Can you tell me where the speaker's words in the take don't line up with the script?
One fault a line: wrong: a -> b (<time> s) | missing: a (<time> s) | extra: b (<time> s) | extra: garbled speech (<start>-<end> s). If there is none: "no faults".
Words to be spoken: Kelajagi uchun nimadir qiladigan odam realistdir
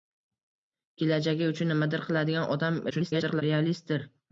extra: garbled speech (2.9-3.4 s)